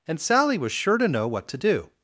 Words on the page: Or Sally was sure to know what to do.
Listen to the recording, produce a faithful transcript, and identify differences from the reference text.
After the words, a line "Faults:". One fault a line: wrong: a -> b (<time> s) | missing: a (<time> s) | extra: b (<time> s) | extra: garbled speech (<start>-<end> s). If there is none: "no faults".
And Sally was sure to know what to do.
Faults:
wrong: Or -> And (0.1 s)